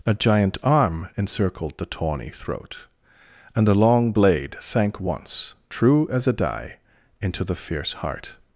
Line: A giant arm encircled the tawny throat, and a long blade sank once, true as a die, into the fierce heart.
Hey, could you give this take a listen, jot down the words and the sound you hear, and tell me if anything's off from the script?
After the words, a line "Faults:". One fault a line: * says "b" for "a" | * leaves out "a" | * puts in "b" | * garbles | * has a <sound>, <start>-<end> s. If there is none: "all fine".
A giant arm encircled the tawny throat, and the long blade sank once, true as a die, into the fierce heart.
Faults:
* says "the" for "a"